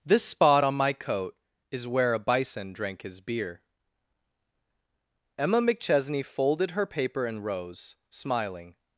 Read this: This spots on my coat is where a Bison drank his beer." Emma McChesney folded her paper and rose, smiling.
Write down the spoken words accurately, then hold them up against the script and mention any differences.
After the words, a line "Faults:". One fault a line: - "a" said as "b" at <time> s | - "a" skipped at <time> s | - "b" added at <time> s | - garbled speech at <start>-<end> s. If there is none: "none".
This spot on my coat is where a Bison drank his beer." Emma McChesney folded her paper and rose, smiling.
Faults:
- "spots" said as "spot" at 0.2 s